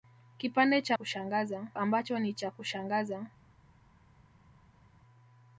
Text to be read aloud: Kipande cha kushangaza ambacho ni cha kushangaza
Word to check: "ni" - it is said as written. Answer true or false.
true